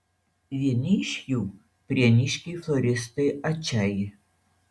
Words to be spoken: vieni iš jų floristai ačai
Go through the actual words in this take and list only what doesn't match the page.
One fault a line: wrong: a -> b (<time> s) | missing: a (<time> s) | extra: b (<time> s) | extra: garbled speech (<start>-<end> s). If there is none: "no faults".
extra: prieniškiai (1.9 s)